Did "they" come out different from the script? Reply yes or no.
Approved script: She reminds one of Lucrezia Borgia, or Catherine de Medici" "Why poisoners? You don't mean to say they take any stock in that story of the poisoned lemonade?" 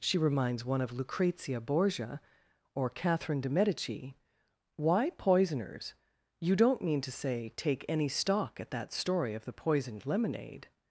yes